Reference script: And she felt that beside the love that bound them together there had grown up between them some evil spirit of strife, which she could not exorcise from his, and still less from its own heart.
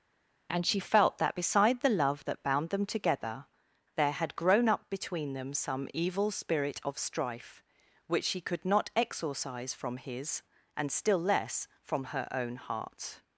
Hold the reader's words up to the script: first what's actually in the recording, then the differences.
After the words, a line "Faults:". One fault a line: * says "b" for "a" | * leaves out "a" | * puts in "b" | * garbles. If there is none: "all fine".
And she felt that beside the love that bound them together there had grown up between them some evil spirit of strife, which she could not exorcise from his, and still less from her own heart.
Faults:
* says "her" for "its"